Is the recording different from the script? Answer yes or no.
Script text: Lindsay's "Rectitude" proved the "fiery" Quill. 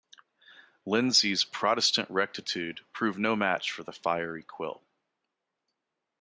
yes